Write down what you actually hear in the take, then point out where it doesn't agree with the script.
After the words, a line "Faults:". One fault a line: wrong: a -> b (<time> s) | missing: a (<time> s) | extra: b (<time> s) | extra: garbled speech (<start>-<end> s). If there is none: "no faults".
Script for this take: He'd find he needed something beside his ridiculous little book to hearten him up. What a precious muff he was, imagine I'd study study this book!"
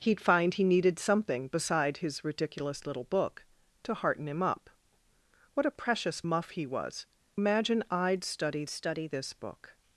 He'd find he needed something beside his ridiculous little book to hearten him up. What a precious muff he was, imagine I'd study study this book!"
Faults:
no faults